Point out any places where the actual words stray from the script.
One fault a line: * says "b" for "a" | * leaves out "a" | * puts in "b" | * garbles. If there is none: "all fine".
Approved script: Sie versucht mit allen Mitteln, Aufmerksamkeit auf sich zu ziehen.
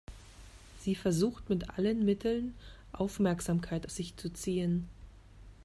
all fine